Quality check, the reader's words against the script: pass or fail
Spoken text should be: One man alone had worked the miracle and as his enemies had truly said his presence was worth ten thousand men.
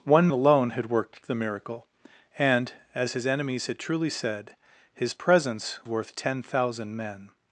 fail